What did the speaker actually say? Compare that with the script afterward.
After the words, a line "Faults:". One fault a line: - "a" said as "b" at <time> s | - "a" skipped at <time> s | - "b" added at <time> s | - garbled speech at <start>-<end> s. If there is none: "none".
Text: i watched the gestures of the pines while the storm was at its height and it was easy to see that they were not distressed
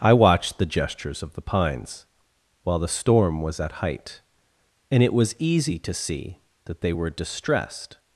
i watched the gestures of the pines while the storm was at height and it was easy to see that they were distressed
Faults:
- "its" skipped at 3.7 s
- "not" skipped at 7.1 s